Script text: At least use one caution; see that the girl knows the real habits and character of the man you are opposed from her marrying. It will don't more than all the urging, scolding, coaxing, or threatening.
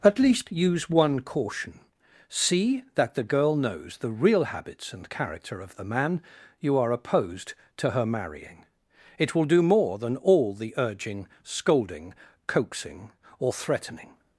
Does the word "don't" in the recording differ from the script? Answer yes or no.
yes